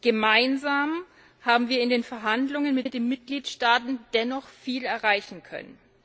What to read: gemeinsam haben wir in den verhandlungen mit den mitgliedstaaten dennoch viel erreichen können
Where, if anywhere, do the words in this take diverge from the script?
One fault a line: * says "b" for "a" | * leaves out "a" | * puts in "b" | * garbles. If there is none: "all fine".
* puts in "mit"